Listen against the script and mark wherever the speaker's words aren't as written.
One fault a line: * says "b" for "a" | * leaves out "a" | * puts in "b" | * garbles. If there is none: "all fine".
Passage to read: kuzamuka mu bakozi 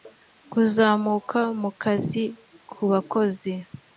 * puts in "kazi ku"